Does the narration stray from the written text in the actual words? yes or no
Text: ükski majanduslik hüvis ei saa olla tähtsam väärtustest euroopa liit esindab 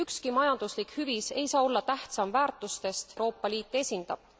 no